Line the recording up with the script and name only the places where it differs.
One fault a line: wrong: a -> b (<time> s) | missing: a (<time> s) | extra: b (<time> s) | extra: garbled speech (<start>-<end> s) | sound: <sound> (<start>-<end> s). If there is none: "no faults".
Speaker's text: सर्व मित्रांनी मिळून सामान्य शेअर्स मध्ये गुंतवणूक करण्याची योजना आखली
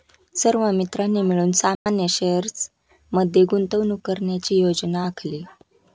sound: dropout (1.7-1.9 s)